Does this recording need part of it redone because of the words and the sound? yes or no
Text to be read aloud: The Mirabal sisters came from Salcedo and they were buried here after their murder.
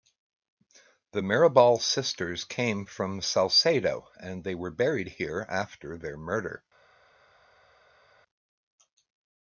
no